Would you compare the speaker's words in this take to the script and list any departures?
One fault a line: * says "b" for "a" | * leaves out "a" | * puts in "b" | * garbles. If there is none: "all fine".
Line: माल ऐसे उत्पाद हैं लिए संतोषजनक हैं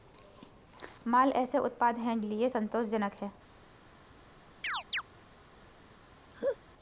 all fine